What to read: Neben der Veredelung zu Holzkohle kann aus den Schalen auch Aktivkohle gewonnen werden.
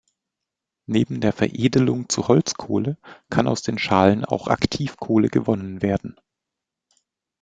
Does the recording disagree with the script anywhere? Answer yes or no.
no